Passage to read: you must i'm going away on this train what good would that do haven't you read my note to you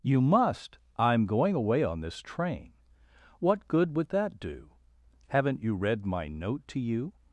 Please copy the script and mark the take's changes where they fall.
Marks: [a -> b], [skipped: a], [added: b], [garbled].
you must i'm going away on this train what good would that do haven't you read my note to you